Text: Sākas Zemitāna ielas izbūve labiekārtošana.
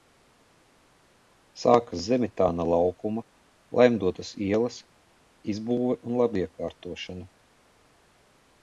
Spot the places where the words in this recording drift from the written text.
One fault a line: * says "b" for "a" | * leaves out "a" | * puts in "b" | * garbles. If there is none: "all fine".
* puts in "laukuma Laimdotas"
* puts in "un"